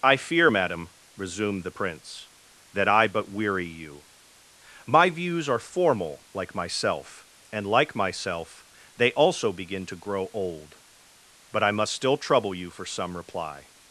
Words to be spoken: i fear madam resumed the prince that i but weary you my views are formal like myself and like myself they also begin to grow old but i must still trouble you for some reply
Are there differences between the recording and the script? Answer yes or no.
no